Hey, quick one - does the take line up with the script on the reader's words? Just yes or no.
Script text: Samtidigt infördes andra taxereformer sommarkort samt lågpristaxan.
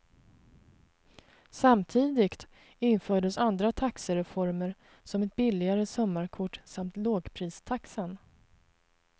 no